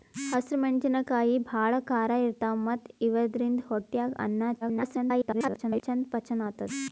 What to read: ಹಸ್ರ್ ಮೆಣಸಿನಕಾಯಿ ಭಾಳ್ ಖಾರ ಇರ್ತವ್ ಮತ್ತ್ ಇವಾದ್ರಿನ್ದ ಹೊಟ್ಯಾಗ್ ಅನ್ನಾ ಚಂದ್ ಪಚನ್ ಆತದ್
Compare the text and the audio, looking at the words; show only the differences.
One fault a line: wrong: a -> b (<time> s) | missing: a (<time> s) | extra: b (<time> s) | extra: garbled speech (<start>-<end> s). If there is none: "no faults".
extra: garbled speech (4.6-5.8 s)